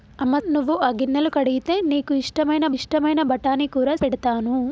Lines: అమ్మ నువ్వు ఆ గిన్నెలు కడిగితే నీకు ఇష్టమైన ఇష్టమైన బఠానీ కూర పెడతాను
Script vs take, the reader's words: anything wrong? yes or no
no